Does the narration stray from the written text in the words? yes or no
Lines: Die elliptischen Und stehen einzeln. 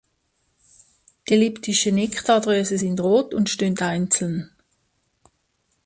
yes